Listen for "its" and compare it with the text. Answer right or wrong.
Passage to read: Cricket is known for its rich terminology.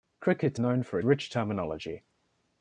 wrong